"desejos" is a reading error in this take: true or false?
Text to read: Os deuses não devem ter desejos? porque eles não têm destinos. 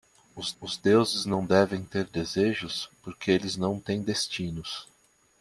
false